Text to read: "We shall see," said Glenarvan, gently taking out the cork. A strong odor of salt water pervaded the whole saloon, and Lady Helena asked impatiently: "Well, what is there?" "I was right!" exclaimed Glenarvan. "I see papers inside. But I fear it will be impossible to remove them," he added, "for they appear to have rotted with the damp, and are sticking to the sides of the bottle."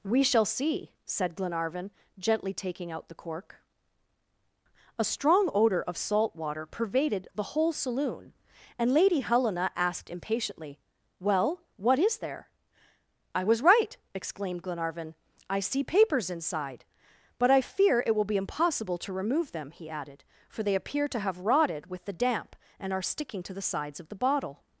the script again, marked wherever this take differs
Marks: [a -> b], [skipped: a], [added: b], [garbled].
"We shall see," said Glenarvan, gently taking out the cork. A strong odor of salt water pervaded the whole saloon, and Lady Helena asked impatiently: "Well, what is there?" "I was right!" exclaimed Glenarvan. "I see papers inside. But I fear it will be impossible to remove them," he added, "for they appear to have rotted with the damp, and are sticking to the sides of the bottle."